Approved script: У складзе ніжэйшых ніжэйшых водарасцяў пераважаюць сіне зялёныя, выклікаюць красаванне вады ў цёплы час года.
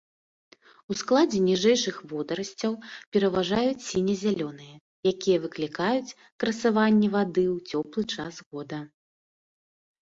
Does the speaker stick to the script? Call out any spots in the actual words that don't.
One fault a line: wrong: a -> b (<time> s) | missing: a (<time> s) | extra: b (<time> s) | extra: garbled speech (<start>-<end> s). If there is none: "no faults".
missing: ніжэйшых (1.9 s)
extra: якія (5.1 s)